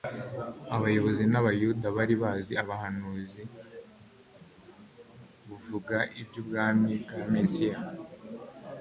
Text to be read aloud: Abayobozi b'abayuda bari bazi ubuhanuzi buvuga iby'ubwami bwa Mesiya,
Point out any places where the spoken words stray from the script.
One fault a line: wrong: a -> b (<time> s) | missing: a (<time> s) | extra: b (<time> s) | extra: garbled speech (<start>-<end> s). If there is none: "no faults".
no faults